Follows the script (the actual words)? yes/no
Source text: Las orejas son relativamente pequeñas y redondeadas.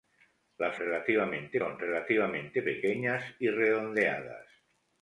no